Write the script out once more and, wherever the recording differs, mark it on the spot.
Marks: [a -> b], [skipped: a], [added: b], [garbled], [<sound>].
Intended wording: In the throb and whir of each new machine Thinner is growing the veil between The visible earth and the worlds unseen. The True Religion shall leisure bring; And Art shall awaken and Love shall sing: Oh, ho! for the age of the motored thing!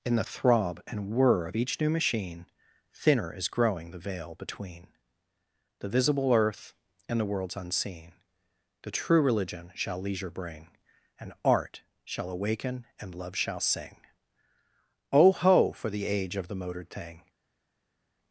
In the throb and whir of each new machine Thinner is growing the veil between The visible earth and the worlds unseen. The True Religion shall leisure bring; And Art shall awaken and Love shall sing: Oh, ho! for the age of the motored thing!